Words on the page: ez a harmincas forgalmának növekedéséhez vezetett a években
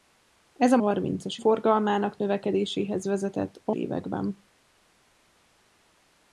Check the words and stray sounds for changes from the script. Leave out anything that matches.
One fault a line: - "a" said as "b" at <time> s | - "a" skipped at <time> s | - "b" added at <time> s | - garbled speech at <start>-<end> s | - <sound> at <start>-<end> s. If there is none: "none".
none